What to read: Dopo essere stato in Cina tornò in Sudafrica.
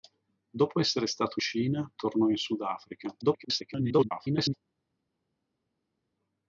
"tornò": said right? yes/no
yes